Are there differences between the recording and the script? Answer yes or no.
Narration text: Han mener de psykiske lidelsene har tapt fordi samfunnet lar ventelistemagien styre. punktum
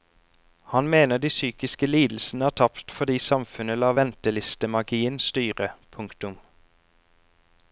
no